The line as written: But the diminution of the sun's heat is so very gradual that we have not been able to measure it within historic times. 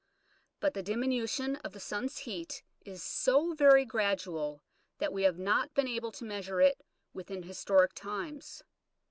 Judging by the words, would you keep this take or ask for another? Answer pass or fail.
pass